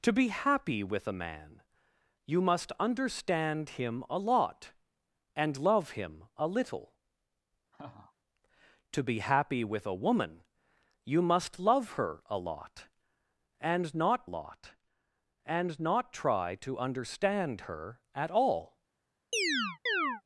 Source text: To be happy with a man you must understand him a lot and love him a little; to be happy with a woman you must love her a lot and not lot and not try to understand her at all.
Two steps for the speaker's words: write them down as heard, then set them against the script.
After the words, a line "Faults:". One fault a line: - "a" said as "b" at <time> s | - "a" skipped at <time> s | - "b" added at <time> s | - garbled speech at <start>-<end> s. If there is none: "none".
To be happy with a man you must understand him a lot and love him a little; to be happy with a woman you must love her a lot and not lot and not try to understand her at all.
Faults:
none